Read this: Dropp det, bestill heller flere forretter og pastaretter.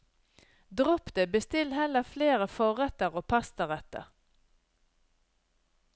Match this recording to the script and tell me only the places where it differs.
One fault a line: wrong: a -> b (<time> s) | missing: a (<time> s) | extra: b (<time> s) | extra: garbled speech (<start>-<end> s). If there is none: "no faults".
no faults